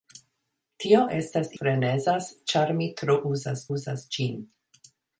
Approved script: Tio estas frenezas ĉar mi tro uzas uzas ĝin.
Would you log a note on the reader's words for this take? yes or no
no